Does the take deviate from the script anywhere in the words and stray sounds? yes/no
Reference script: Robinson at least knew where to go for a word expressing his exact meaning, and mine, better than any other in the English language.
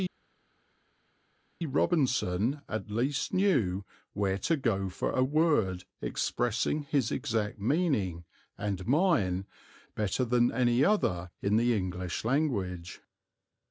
no